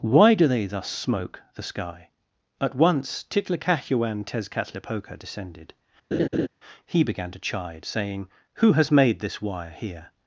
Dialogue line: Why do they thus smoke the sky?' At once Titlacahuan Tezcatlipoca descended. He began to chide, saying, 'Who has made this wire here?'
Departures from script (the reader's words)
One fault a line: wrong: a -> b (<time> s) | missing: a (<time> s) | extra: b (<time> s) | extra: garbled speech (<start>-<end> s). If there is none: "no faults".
no faults